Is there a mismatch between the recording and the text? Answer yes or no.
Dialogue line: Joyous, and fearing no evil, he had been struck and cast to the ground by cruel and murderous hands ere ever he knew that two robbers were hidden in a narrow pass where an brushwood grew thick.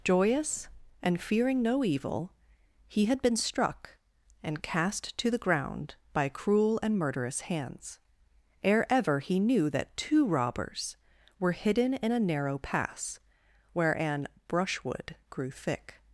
no